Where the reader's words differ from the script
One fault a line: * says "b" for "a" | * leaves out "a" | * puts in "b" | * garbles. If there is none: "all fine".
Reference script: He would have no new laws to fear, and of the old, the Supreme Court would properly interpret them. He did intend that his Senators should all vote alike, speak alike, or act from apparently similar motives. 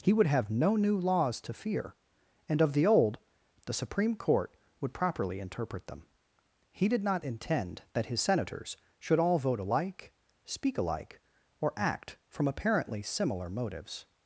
* puts in "not"